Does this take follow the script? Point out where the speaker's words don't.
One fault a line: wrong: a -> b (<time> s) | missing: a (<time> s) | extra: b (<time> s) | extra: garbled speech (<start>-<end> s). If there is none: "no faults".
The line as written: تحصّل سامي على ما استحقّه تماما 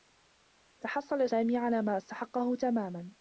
no faults